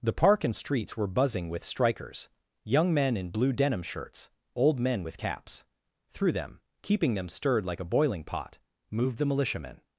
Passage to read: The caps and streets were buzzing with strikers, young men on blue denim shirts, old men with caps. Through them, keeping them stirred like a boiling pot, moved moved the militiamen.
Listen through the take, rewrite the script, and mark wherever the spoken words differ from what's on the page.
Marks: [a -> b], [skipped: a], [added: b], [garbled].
The [caps -> park] and streets were buzzing with strikers, young men [on -> in] blue denim shirts, old men with caps. Through them, keeping them stirred like a boiling pot, moved [skipped: moved] the militiamen.